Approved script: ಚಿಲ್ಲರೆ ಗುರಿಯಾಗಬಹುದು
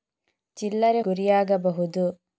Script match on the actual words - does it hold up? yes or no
yes